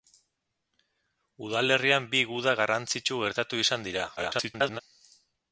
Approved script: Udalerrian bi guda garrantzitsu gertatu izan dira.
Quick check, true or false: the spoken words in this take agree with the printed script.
false